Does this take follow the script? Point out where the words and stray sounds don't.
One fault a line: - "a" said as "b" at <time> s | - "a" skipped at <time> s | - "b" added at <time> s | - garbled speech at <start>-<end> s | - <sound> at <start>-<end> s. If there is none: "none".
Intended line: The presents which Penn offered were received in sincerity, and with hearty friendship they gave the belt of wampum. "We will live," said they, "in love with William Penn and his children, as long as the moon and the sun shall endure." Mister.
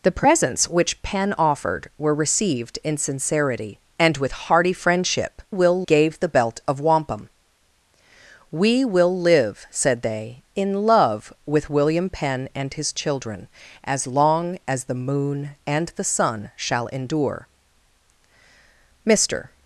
- "they" said as "will" at 5.5 s